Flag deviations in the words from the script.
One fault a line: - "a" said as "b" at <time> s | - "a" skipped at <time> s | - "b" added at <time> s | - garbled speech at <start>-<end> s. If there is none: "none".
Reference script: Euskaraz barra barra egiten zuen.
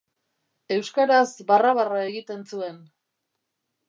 none